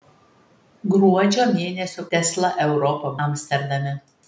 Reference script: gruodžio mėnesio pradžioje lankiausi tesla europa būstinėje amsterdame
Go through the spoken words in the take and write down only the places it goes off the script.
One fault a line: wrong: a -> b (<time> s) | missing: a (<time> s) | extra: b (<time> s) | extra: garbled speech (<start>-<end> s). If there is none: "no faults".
missing: pradžioje lankiausi (2.0 s)
missing: būstinėje (3.1 s)